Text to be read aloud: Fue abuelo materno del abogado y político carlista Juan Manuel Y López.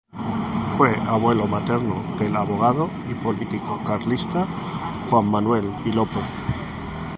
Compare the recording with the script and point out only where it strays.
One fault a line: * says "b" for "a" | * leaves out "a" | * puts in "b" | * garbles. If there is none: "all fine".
all fine